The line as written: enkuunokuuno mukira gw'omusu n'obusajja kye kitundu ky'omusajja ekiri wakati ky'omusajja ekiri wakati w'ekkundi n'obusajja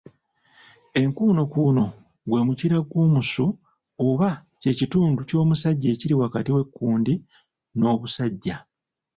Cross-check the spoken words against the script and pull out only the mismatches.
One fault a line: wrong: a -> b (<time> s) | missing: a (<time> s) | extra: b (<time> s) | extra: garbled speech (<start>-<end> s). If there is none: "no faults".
extra: gwe (2.3 s)
wrong: n'obusajja -> oba (4.1 s)
missing: ky'omusajja ekiri wakati (6.5 s)